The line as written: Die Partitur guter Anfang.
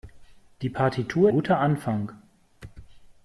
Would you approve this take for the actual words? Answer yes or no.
yes